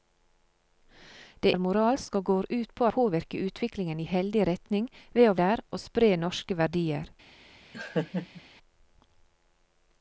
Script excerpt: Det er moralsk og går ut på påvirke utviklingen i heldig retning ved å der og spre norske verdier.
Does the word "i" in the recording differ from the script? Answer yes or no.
no